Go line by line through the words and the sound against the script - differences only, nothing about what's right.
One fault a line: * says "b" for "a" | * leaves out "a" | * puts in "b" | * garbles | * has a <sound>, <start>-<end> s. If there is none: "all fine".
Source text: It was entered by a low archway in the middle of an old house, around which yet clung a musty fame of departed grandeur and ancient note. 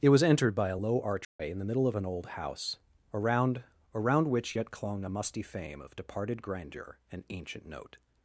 * has a dropout, 1.2-1.4 s
* puts in "around"